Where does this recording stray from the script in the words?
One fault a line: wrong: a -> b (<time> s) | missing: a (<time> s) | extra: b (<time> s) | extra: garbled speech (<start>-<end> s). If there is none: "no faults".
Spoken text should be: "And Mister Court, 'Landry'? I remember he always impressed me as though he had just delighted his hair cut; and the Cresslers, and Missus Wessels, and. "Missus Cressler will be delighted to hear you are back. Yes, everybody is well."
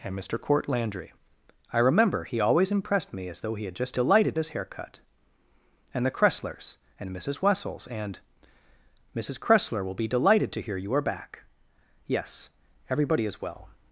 no faults